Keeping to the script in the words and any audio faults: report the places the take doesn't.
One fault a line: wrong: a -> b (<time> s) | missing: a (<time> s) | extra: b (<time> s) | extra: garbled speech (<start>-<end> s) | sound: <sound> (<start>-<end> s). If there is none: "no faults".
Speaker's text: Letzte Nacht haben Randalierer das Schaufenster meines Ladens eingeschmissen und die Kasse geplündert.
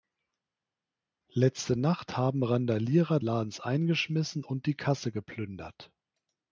missing: das Schaufenster meines (3.2 s)